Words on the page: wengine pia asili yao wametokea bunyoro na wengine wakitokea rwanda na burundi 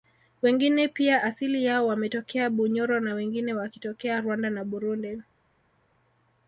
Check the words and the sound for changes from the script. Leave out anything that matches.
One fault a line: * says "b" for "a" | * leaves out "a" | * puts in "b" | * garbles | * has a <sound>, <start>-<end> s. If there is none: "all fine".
all fine